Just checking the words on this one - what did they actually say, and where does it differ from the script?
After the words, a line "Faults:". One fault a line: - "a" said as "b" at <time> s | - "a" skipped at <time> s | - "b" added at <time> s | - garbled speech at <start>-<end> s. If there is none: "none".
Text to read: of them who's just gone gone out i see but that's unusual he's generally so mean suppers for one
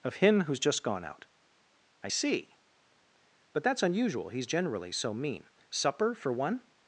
of him who's just gone out i see but that's unusual he's generally so mean supper for one
Faults:
- "them" said as "him" at 0.2 s
- "gone" skipped at 1.1 s
- "suppers" said as "supper" at 5.7 s